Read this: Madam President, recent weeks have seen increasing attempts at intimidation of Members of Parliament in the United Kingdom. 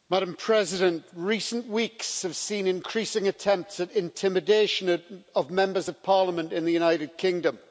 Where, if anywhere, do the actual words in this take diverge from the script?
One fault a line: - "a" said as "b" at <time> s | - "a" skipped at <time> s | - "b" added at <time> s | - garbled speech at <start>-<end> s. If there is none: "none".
none